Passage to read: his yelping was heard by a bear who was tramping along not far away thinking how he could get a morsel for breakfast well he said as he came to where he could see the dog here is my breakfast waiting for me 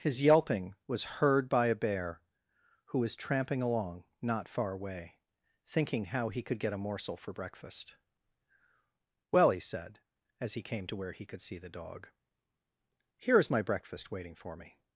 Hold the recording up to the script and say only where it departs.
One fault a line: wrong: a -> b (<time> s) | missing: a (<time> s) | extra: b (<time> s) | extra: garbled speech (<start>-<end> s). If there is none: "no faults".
no faults